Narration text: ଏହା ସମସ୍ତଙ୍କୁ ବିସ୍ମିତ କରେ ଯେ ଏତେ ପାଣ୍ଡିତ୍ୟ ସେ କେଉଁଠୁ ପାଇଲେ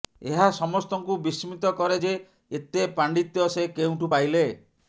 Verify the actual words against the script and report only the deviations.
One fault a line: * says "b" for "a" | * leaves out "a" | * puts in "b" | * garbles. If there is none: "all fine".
all fine